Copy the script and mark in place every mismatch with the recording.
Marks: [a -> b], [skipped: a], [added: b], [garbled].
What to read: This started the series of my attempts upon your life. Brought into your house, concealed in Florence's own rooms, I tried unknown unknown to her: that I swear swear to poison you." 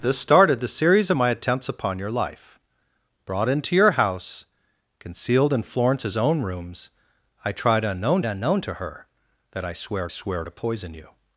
This started the series of my attempts upon your life. Brought into your house, concealed in Florence's own rooms, I tried unknown unknown to her: that I swear swear to poison you."